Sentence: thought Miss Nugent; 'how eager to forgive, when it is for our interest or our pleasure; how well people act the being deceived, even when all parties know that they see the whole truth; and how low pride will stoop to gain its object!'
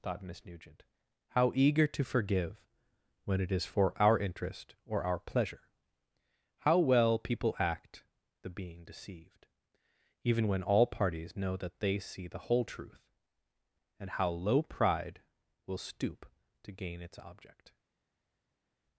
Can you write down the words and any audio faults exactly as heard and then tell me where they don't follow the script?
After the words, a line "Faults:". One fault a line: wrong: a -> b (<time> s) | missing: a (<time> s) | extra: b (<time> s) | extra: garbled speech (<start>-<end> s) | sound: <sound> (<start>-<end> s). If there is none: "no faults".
thought Miss Nugent; 'how eager to forgive, when it is for our interest or our pleasure; how well people act the being deceived, even when all parties know that they see the whole truth; and how low pride will stoop to gain its object!'
Faults:
no faults